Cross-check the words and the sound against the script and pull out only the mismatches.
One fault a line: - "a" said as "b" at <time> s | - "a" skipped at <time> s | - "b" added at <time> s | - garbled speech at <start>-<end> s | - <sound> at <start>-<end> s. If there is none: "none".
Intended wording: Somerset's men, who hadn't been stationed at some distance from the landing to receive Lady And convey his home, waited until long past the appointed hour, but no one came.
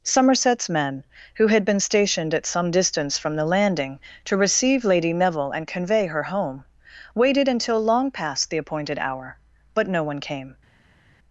- "hadn't" said as "had" at 1.4 s
- "Neville" added at 5.1 s
- "his" said as "her" at 6.1 s